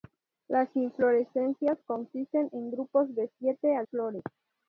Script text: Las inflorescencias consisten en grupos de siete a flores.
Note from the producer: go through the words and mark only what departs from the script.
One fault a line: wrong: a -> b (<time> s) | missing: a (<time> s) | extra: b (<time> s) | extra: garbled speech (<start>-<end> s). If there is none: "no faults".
no faults